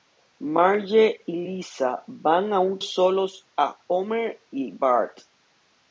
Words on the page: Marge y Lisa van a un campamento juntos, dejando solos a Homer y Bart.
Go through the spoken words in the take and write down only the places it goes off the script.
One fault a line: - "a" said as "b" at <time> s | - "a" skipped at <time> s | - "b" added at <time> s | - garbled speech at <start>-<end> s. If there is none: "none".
- "campamento juntos dejando" skipped at 2.8 s